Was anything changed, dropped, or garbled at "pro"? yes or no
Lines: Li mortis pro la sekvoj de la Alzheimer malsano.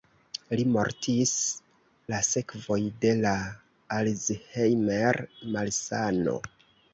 yes